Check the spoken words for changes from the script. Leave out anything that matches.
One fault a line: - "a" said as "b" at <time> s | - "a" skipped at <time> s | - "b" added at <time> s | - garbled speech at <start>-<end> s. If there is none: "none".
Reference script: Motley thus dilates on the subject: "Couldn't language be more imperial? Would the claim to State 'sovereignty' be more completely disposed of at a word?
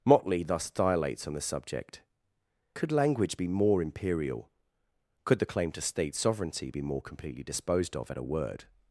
- "Couldn't" said as "Could" at 2.7 s
- "Would" said as "Could" at 5.2 s